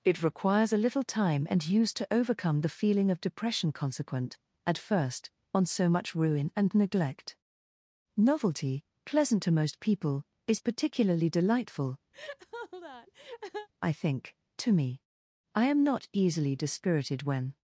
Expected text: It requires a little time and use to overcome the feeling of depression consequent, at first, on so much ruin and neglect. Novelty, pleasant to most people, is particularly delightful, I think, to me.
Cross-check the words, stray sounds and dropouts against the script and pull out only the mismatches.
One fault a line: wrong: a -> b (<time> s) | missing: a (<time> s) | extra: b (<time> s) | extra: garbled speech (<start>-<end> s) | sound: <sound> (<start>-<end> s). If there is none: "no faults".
sound: laugh (12.1-13.7 s)
extra: I am not easily dispirited when (15.5 s)